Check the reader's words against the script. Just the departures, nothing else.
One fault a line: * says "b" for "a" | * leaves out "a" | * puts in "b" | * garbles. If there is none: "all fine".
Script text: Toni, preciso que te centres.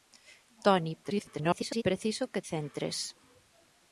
* garbles
* leaves out "te"